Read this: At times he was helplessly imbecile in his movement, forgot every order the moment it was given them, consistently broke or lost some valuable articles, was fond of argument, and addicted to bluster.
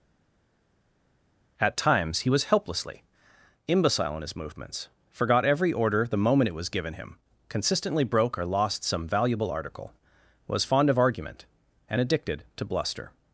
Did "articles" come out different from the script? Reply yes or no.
yes